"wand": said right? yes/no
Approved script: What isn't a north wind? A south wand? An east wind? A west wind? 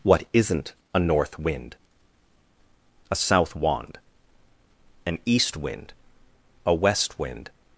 yes